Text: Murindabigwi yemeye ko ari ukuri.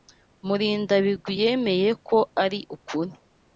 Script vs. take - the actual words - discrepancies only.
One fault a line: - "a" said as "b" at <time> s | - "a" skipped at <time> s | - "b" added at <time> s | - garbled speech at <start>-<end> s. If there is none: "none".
none